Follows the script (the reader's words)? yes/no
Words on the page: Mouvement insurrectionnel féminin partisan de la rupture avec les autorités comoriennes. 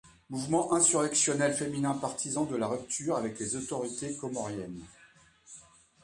yes